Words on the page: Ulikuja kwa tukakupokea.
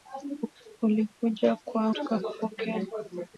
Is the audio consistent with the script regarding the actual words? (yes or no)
yes